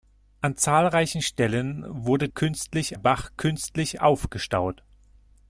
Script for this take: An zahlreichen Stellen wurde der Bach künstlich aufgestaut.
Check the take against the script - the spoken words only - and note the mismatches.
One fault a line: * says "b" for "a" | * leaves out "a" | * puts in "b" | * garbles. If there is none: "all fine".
* says "künstlich" for "der"